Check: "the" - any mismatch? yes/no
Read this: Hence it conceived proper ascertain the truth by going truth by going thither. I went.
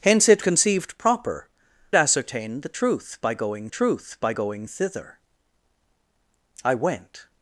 no